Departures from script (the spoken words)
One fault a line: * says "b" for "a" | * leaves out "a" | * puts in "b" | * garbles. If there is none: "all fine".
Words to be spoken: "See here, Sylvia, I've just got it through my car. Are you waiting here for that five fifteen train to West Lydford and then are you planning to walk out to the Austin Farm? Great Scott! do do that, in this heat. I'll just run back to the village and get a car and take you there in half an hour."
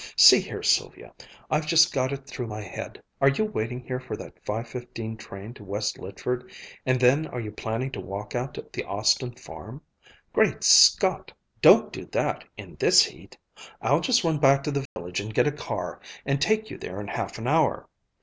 * says "head" for "car"
* says "don't" for "do"